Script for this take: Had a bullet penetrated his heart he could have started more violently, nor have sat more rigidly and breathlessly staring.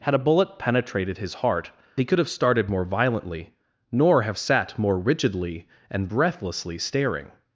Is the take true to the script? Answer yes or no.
yes